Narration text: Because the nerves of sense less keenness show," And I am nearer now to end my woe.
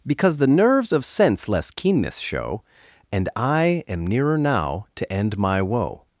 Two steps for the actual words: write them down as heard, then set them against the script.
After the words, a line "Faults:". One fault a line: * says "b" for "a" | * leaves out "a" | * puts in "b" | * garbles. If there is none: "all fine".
Because the nerves of sense less keenness show," And I am nearer now to end my woe.
Faults:
all fine